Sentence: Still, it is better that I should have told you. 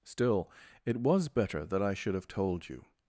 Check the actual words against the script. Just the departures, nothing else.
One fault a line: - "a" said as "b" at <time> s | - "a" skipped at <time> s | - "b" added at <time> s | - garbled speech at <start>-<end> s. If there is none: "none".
- "is" said as "was" at 1.0 s